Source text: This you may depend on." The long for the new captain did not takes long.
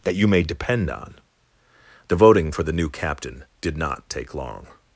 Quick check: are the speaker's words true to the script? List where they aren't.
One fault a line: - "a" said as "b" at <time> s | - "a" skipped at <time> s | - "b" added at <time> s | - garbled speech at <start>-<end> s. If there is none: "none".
- "This" said as "That" at 0.0 s
- "long" said as "voting" at 2.1 s
- "takes" said as "take" at 4.1 s